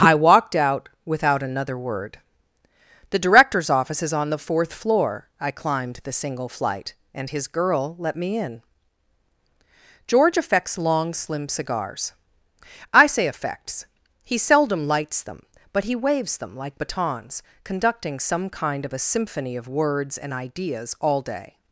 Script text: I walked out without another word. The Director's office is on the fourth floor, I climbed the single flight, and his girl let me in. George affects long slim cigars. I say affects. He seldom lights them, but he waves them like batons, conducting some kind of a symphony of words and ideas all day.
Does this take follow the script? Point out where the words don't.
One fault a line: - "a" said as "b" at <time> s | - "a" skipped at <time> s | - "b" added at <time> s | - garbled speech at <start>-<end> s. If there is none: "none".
none